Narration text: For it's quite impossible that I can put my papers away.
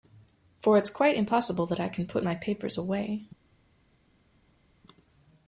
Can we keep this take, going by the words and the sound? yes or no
yes